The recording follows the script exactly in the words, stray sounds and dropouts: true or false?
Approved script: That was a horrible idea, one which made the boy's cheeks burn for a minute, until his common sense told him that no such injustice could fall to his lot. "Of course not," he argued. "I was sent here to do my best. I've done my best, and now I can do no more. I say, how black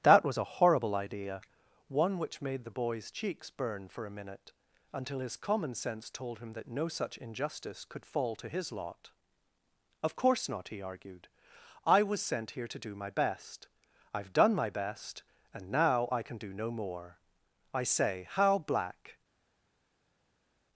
true